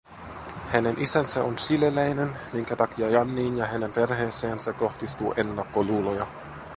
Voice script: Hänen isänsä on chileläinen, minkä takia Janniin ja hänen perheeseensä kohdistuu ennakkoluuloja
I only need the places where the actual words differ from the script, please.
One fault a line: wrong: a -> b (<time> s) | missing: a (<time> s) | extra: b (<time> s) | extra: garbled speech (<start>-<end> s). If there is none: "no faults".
no faults